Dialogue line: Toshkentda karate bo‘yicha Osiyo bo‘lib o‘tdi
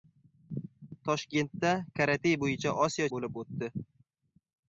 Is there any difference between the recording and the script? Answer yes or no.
no